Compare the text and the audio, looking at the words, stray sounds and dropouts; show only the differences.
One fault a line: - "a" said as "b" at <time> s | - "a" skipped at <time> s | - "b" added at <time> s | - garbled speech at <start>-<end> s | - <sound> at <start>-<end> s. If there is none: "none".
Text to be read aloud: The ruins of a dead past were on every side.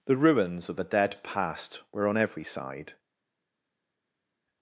none